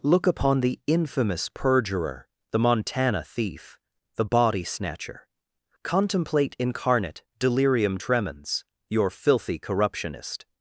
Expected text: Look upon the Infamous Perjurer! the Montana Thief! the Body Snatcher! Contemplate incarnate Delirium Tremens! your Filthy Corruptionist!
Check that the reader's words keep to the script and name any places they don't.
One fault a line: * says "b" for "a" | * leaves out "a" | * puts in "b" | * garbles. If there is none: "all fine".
all fine